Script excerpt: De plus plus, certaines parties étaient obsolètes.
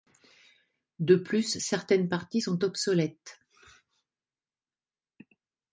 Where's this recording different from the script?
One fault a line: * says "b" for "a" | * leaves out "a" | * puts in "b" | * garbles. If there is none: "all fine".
* leaves out "plus"
* says "sont" for "étaient"